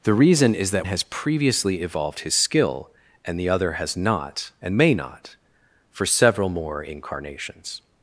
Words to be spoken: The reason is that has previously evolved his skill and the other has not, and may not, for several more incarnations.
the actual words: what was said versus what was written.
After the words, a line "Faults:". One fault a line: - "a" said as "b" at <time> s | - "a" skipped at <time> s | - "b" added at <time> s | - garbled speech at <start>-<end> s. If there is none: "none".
The reason is that has previously evolved his skill and the other has not, and may not, for several more incarnations.
Faults:
none